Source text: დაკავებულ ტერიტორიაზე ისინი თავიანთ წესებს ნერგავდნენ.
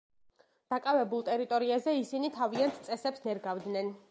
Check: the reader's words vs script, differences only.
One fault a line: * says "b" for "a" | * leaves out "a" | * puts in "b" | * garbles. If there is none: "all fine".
all fine